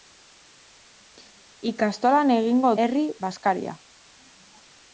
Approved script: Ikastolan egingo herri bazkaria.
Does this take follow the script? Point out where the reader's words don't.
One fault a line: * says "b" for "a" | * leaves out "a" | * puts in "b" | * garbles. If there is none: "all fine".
all fine